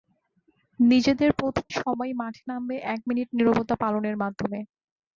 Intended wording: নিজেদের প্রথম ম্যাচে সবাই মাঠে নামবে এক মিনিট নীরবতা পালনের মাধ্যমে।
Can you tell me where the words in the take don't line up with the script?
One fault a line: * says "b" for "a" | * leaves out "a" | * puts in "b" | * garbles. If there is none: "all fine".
* leaves out "ম্যাচে"